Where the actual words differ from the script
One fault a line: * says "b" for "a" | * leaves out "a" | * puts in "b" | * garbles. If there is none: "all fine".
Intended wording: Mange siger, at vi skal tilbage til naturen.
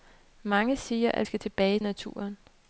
* leaves out "vi"
* leaves out "til"